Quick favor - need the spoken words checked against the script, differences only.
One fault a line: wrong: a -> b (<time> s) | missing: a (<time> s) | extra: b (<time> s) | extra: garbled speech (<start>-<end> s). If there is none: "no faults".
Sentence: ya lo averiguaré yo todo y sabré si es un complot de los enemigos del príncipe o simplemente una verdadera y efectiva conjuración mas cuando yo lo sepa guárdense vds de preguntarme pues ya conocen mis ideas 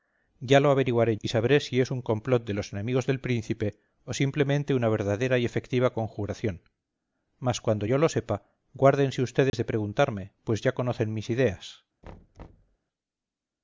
missing: yo todo (1.1 s)